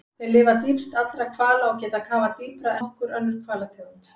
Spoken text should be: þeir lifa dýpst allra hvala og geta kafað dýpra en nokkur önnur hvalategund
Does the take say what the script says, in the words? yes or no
no